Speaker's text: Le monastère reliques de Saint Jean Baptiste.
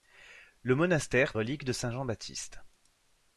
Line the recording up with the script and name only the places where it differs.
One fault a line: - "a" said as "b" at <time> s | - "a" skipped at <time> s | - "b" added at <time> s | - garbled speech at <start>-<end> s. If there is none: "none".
none